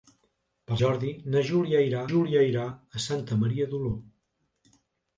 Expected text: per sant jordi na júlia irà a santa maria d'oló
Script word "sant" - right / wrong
wrong